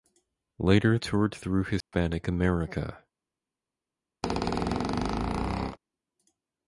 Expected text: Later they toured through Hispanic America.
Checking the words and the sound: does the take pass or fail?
fail